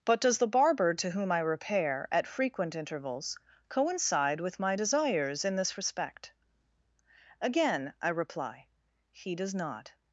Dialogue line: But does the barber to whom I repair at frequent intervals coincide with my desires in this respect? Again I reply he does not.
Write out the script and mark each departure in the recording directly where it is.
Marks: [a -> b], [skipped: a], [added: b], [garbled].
But does the barber to whom I repair at frequent intervals coincide with my desires in this respect? Again I reply he does not.